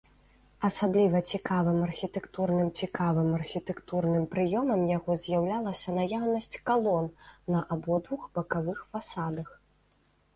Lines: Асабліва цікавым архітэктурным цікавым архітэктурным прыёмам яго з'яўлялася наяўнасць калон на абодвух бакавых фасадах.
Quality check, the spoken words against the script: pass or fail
pass